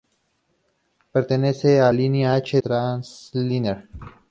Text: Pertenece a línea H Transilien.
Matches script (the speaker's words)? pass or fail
pass